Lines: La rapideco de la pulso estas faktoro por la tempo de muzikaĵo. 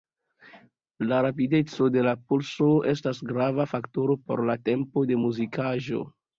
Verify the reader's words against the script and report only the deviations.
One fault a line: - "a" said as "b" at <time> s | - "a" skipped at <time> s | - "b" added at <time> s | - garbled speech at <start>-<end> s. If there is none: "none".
- "grava" added at 3.4 s